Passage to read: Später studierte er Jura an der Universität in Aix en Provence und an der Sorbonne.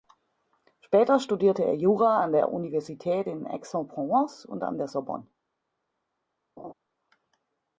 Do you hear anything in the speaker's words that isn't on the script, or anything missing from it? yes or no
no